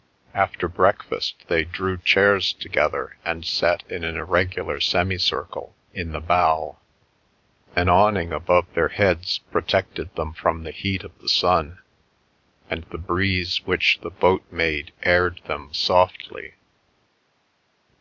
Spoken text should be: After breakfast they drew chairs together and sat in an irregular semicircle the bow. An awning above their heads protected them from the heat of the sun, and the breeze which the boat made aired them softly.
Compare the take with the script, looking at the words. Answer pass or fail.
fail